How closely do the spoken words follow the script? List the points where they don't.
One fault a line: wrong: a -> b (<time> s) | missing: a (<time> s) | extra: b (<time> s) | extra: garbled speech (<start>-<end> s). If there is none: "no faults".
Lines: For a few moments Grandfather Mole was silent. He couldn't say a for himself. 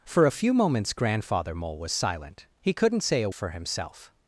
no faults